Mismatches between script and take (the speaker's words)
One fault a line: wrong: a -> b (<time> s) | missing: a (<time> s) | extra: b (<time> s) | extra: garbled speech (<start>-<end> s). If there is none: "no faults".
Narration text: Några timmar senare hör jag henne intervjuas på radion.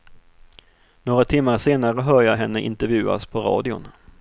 no faults